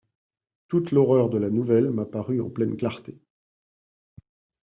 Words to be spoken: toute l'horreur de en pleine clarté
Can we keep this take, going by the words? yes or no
no